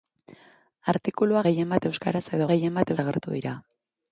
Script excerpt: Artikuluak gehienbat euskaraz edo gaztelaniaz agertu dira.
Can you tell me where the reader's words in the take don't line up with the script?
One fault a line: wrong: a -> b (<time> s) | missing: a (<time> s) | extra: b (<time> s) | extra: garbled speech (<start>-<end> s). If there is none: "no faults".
wrong: gaztelaniaz -> gehienbat (2.5 s)